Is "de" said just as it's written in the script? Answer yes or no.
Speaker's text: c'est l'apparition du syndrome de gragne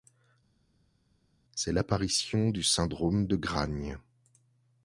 yes